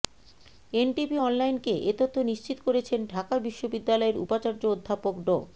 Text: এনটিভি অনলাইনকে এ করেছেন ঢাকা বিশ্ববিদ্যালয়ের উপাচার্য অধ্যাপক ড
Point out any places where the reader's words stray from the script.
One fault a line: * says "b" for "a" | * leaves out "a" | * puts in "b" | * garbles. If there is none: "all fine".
* puts in "তথ্য নিশ্চিত"